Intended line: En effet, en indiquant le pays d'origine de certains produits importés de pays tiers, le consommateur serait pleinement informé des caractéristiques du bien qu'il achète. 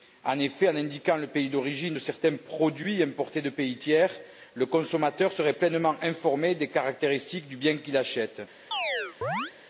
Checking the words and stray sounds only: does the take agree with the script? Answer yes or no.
no